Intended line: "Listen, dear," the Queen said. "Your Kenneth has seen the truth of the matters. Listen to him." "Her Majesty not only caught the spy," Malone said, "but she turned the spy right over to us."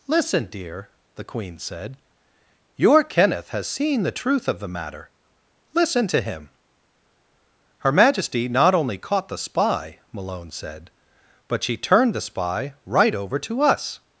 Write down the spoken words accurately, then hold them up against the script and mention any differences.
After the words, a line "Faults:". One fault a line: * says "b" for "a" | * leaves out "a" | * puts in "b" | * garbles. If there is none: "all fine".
"Listen, dear," the Queen said. "Your Kenneth has seen the truth of the matter. Listen to him." "Her Majesty not only caught the spy," Malone said, "but she turned the spy right over to us."
Faults:
* says "matter" for "matters"